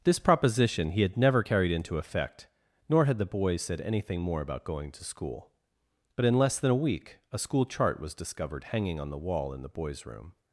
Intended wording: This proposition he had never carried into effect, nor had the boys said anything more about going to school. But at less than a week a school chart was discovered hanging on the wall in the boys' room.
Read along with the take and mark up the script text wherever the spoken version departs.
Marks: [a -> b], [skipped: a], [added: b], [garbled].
This proposition he had never carried into effect, nor had the boys said anything more about going to school. But [at -> in] less than a week a school chart was discovered hanging on the wall in the boys' room.